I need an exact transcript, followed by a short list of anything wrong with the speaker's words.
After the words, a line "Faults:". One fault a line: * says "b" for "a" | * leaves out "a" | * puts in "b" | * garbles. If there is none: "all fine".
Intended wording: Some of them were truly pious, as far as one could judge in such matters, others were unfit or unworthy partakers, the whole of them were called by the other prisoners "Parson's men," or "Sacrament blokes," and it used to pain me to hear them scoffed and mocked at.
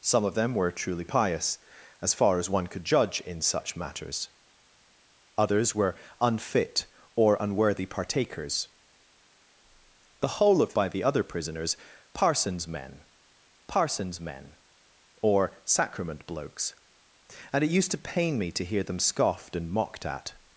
Some of them were truly pious, as far as one could judge in such matters, others were unfit or unworthy partakers, the whole of by the other prisoners "Parson's men parson's men," or "Sacrament blokes," and it used to pain me to hear them scoffed and mocked at.
Faults:
* leaves out "them were called"
* puts in "parson's men"